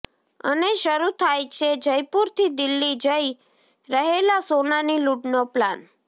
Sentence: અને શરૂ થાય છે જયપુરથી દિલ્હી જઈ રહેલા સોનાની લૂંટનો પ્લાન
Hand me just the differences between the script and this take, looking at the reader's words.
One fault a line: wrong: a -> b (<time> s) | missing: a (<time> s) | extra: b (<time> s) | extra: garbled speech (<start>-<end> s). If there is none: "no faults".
no faults